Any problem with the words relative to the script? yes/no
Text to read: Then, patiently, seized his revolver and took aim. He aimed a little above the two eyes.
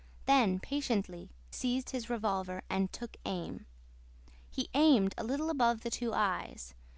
no